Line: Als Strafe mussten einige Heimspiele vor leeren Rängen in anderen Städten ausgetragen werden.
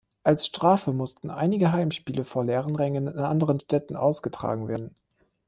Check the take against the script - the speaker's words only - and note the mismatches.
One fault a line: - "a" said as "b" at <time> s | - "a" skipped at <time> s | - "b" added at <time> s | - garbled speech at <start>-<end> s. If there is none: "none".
none